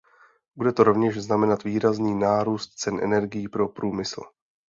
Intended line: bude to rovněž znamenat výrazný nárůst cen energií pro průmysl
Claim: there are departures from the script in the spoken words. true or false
false